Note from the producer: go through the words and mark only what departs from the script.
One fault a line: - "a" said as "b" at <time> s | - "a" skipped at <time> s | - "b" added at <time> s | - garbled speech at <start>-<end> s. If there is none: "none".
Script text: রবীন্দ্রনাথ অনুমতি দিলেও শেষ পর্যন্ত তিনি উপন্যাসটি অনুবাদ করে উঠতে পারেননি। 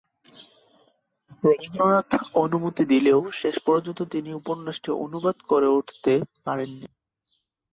none